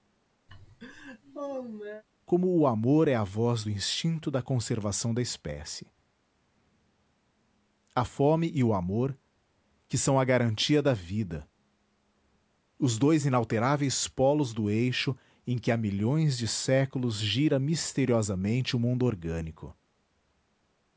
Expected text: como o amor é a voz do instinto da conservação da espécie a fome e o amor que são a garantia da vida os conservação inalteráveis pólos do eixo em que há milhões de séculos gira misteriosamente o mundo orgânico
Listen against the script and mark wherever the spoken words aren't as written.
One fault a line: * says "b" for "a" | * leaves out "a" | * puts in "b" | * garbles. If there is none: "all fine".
* says "dois" for "conservação"